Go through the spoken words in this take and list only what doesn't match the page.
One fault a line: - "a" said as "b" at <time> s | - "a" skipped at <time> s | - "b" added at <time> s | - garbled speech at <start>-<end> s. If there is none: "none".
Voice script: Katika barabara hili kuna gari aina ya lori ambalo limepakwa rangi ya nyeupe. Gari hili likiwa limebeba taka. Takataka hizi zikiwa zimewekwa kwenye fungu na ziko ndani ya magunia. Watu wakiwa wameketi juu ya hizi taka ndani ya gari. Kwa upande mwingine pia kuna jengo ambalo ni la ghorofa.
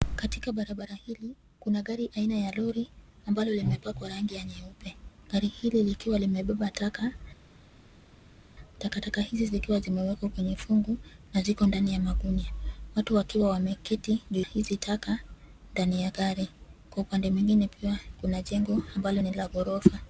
- "ya" skipped at 14.4 s